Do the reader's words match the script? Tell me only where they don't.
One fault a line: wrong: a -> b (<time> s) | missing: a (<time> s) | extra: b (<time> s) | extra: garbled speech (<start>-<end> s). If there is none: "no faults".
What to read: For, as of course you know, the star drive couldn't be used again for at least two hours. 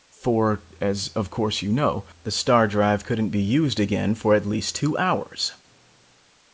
no faults